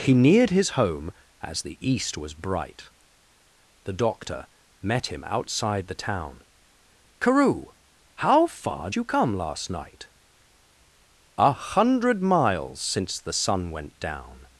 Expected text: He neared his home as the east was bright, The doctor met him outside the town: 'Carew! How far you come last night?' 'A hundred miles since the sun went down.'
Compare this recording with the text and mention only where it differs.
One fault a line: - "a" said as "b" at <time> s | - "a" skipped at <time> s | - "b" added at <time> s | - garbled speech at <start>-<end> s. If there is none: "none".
none